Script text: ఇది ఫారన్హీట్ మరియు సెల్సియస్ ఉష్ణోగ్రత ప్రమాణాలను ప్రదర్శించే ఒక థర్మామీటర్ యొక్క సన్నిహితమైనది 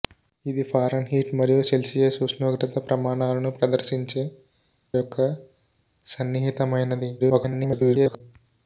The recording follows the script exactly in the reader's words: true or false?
false